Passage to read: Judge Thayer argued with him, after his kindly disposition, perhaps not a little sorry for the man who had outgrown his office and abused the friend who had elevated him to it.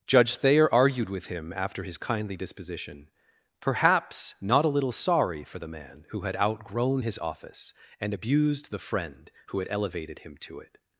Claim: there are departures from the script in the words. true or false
false